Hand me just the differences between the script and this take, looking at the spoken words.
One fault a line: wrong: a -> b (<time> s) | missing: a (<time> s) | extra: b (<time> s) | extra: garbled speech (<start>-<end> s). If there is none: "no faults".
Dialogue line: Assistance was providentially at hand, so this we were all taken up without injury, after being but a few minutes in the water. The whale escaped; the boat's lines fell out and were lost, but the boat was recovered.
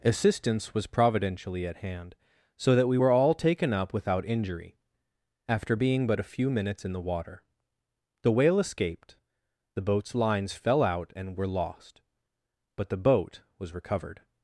wrong: this -> that (2.8 s)